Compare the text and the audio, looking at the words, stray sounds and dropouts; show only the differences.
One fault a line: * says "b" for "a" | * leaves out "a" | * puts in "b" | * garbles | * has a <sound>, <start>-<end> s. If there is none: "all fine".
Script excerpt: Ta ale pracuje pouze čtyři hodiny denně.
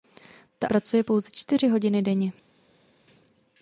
* leaves out "ale"